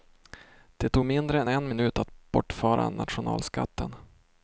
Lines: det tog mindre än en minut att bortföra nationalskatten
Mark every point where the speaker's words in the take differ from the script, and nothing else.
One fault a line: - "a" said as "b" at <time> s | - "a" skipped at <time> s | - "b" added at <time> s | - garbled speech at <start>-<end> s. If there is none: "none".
none